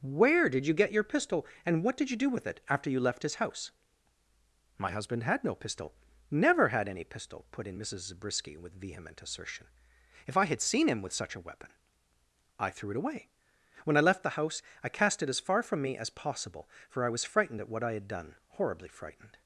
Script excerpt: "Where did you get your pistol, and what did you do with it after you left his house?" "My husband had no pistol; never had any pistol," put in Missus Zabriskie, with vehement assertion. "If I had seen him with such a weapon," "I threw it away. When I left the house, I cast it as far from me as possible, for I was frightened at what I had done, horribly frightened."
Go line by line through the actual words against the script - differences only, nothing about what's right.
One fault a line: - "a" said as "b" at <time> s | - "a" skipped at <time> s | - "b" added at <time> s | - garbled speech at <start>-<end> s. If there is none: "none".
none